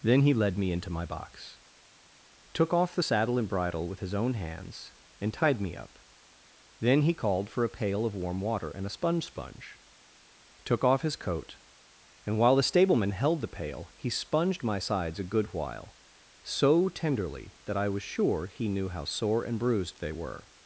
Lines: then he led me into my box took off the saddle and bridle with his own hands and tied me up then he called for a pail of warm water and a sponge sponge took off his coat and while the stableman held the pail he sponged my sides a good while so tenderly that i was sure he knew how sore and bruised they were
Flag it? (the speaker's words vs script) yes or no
no